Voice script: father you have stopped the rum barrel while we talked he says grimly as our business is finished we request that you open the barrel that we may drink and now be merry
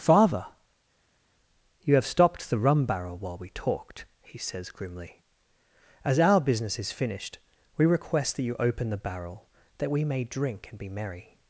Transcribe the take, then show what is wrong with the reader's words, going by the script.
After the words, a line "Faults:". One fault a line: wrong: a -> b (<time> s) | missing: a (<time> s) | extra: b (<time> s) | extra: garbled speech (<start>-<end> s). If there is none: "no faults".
father you have stopped the rum barrel while we talked he says grimly as our business is finished we request that you open the barrel that we may drink and be merry
Faults:
missing: now (10.8 s)